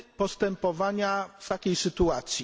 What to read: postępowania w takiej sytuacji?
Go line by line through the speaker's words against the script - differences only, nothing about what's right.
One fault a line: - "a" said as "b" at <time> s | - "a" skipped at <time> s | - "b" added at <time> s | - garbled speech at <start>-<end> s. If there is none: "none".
none